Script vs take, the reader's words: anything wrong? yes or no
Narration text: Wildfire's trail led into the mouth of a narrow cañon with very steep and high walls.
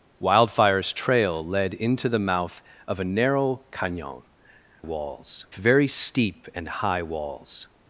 yes